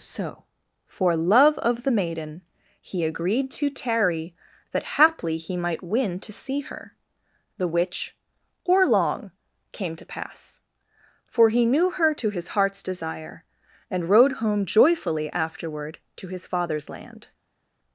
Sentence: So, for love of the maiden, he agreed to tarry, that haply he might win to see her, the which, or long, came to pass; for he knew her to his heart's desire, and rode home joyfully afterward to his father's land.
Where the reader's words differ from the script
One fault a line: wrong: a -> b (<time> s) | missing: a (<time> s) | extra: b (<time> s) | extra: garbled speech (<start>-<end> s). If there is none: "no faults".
no faults